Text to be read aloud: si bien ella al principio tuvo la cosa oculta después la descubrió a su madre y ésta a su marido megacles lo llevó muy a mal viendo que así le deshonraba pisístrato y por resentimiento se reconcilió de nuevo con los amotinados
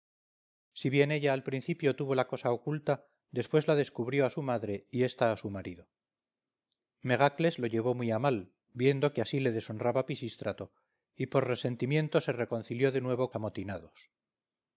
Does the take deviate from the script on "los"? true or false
true